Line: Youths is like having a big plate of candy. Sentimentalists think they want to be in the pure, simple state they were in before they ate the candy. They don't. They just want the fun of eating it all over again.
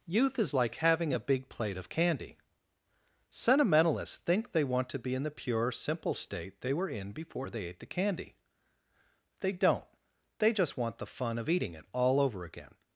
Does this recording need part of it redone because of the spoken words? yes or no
yes